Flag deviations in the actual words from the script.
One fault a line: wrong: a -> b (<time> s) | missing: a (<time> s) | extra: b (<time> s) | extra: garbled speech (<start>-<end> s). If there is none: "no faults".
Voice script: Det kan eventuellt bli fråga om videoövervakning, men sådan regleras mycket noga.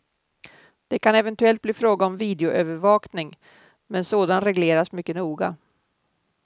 no faults